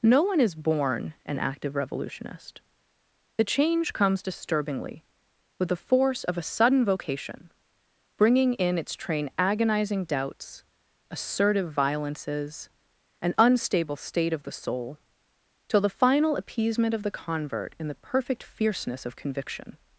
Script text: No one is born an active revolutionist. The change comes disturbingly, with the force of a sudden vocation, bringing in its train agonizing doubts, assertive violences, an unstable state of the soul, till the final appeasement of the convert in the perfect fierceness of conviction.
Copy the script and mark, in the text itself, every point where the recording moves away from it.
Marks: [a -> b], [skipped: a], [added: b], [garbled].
No one is born an active revolutionist. The change comes disturbingly, with the force of a sudden vocation, bringing in its train agonizing doubts, assertive violences, an unstable state of the soul, till the final appeasement of the convert in the perfect fierceness of conviction.